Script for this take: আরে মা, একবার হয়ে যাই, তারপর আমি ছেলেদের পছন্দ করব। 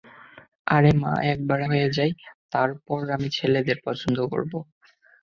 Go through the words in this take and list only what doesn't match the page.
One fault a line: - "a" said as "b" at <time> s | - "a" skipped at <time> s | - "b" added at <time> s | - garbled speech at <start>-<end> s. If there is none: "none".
none